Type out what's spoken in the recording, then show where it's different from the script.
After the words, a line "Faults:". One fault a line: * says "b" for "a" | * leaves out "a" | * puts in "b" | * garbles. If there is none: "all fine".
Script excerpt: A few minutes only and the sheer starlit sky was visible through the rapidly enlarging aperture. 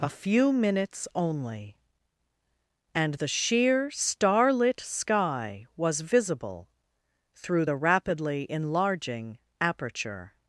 A few minutes only and the sheer starlit sky was visible through the rapidly enlarging aperture.
Faults:
all fine